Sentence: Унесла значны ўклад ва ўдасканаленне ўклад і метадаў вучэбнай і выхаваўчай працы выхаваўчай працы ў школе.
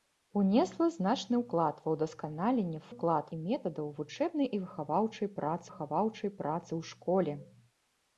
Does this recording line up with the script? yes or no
yes